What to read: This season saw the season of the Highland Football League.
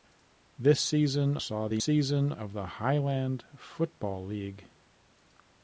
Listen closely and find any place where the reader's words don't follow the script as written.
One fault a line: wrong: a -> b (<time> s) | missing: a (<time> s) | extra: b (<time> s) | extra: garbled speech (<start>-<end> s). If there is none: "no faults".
no faults